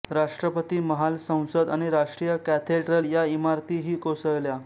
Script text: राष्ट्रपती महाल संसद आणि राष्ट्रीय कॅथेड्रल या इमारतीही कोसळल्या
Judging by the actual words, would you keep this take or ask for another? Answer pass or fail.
pass